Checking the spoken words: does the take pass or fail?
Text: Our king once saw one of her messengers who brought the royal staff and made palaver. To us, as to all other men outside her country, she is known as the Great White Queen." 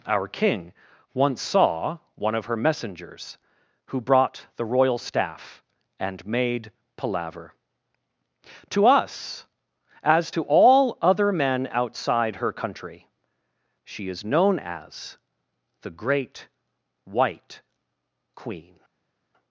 pass